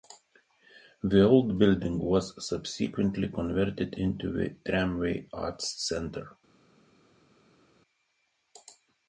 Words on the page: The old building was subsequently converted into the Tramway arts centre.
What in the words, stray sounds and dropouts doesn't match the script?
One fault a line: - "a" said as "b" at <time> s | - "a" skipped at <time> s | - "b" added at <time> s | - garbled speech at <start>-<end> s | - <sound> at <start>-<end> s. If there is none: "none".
none